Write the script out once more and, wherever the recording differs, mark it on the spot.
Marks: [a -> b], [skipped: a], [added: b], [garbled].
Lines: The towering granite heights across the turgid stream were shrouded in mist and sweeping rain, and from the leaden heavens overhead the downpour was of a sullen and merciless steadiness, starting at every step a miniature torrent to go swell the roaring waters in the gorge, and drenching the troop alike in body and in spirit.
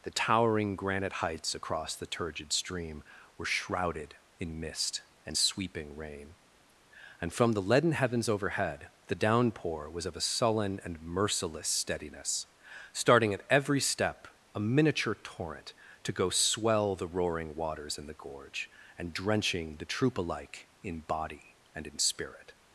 The towering granite heights across the turgid stream were shrouded in mist and sweeping rain, and from the leaden heavens overhead the downpour was of a sullen and merciless steadiness, starting at every step a miniature torrent to go swell the roaring waters in the gorge, and drenching the troop alike in body and in spirit.